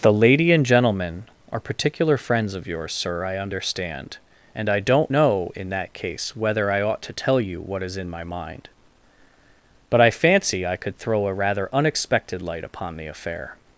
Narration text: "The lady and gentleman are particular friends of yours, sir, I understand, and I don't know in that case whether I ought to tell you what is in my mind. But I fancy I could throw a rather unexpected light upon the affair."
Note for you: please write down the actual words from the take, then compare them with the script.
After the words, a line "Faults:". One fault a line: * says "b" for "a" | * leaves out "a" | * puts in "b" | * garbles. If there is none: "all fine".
"The lady and gentleman are particular friends of yours, sir, I understand, and I don't know in that case whether I ought to tell you what is in my mind. But I fancy I could throw a rather unexpected light upon the affair."
Faults:
all fine